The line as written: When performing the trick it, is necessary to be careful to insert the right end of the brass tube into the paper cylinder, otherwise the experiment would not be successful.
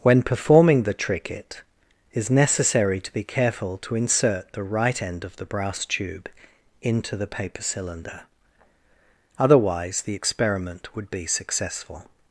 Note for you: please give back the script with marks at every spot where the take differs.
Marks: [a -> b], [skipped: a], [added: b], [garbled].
When performing the trick it, is necessary to be careful to insert the right end of the brass tube into the paper cylinder, otherwise the experiment would [skipped: not] be successful.